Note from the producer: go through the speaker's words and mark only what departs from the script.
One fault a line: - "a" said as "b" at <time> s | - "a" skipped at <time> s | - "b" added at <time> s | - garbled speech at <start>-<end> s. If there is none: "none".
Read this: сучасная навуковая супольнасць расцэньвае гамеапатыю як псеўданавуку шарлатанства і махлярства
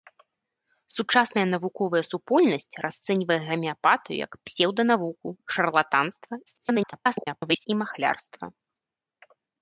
- garbled speech at 6.5-7.7 s